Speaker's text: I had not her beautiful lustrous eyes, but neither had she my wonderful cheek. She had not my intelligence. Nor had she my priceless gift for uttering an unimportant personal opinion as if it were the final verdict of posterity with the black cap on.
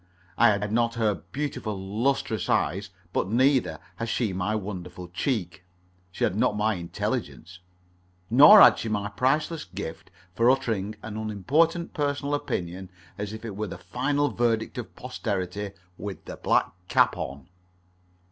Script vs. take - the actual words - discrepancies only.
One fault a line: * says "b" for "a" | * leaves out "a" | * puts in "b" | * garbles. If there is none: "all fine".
* puts in "had"